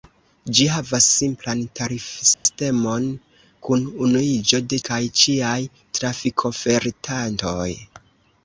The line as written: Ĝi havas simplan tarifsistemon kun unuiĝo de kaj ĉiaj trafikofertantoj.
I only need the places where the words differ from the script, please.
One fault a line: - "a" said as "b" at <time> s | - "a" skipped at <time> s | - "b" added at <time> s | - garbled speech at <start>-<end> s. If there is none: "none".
none